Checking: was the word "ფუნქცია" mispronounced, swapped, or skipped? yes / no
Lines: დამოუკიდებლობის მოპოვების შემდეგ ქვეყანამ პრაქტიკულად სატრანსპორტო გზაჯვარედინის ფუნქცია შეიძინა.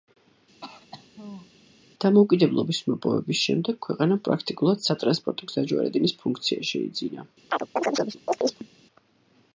no